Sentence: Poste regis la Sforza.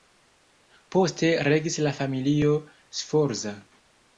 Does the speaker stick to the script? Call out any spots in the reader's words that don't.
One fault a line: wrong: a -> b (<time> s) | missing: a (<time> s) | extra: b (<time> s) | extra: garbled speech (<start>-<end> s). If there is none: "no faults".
extra: familio (2.0 s)